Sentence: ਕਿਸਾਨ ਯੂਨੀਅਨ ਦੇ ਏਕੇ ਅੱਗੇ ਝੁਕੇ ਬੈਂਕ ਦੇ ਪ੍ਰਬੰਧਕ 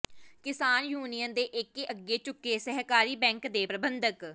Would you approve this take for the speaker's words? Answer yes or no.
no